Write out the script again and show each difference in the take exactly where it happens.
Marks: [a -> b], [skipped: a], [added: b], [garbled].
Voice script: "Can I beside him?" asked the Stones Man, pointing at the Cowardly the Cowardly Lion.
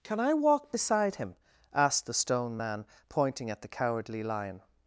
"Can I [added: walk] beside him?" asked the [Stones -> Stone] Man, pointing at the Cowardly [skipped: the Cowardly] Lion.